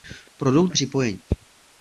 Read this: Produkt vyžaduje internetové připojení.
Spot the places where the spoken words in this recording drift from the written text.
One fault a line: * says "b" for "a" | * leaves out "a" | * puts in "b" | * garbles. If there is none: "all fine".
* leaves out "vyžaduje internetové"